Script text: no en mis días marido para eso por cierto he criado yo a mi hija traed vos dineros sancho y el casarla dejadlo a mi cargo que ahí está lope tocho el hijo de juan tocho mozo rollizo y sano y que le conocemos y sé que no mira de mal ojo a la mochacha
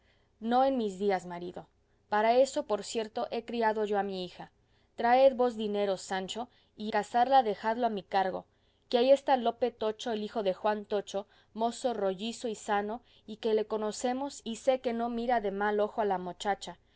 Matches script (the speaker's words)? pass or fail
fail